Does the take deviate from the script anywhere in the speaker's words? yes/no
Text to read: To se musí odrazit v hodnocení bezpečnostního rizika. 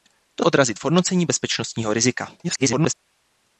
yes